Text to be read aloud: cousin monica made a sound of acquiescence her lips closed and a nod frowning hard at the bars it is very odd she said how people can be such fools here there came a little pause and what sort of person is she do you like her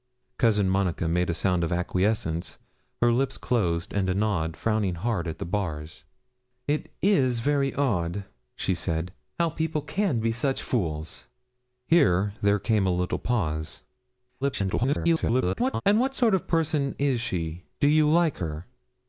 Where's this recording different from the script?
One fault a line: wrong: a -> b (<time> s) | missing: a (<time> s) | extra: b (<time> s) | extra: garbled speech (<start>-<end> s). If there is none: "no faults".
extra: garbled speech (14.4-15.8 s)